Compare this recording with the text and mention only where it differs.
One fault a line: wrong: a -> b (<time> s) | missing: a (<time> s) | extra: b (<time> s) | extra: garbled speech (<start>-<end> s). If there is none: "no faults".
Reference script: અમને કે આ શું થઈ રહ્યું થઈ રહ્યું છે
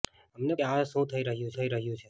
no faults